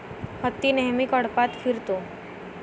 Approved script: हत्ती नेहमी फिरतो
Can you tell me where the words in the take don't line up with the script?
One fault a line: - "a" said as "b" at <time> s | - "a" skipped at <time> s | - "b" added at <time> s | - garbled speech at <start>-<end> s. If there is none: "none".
- "कळपात" added at 1.0 s